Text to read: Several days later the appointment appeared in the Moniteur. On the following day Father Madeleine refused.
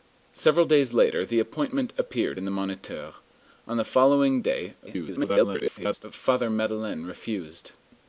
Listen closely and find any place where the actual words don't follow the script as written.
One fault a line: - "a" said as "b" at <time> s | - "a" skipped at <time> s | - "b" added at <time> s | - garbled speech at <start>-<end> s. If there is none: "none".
- garbled speech at 4.9-6.0 s